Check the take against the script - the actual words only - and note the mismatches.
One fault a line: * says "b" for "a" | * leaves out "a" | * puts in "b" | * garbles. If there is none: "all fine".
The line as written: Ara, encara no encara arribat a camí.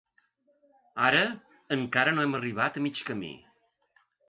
* says "hem" for "encara"
* puts in "mig"